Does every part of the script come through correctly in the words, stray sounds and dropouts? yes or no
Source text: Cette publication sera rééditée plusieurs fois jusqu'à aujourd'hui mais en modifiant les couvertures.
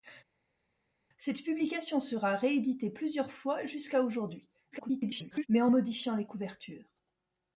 no